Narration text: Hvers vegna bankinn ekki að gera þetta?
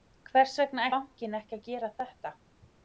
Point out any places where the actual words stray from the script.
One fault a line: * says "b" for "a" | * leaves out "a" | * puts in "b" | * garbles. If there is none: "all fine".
all fine